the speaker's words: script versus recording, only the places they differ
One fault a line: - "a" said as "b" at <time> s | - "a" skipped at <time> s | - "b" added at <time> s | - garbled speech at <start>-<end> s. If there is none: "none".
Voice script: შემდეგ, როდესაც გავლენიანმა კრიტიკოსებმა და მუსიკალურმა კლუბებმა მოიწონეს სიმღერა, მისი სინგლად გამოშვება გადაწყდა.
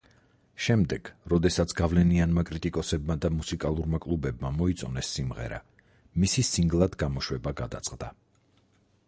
none